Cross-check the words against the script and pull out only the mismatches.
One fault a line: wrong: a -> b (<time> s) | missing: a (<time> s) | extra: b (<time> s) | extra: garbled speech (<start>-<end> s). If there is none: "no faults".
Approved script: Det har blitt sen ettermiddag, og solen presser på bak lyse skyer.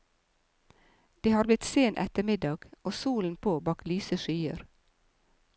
missing: presser (3.4 s)